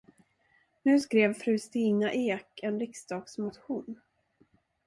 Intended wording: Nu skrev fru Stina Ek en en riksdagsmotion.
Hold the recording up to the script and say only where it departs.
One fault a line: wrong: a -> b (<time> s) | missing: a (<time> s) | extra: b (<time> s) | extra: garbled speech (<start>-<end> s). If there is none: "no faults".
missing: en (2.8 s)